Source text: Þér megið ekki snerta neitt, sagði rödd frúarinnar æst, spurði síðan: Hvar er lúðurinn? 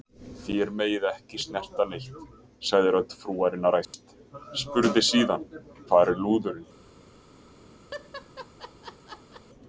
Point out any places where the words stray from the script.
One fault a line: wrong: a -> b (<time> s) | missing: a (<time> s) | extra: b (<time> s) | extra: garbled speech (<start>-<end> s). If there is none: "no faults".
no faults